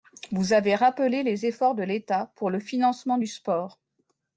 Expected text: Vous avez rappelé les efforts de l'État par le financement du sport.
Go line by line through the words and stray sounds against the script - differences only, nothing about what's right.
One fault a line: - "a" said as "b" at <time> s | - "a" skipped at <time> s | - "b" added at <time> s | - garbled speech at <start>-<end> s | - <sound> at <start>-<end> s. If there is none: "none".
- "par" said as "pour" at 2.4 s